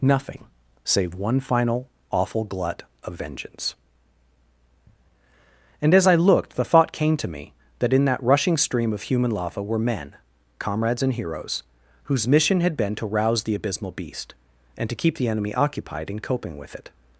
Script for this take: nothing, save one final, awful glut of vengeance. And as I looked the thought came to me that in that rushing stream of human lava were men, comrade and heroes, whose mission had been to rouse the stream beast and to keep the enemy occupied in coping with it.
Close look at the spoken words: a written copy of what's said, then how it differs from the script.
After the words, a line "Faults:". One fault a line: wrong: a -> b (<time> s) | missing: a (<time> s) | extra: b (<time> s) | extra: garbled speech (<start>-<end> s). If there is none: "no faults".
nothing, save one final, awful glut of vengeance. And as I looked the thought came to me that in that rushing stream of human lava were men, comrades and heroes, whose mission had been to rouse the abysmal beast and to keep the enemy occupied in coping with it.
Faults:
wrong: comrade -> comrades (10.6 s)
wrong: stream -> abysmal (13.5 s)